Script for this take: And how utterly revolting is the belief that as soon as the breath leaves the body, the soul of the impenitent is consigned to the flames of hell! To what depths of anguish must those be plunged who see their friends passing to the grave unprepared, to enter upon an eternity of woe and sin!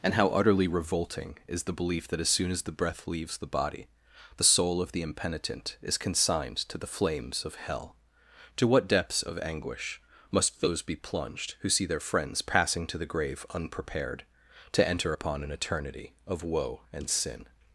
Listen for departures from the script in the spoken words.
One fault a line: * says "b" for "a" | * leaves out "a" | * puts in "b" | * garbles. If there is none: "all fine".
all fine